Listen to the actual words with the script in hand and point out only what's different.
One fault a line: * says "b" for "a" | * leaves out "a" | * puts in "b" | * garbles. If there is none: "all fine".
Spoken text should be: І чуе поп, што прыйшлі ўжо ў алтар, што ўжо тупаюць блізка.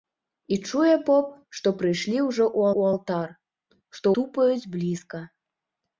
* puts in "ў"
* leaves out "ўжо"